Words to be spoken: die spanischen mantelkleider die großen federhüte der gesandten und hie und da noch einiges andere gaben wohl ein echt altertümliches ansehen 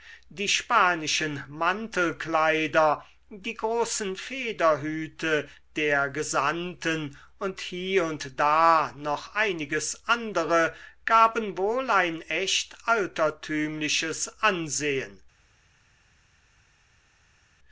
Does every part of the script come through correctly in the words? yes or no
yes